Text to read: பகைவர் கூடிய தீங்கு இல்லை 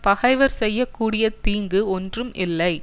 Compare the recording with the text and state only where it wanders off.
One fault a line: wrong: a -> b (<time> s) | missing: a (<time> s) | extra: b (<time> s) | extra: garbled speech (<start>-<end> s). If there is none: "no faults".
extra: செய்ய (0.5 s)
extra: ஒன்றும் (1.9 s)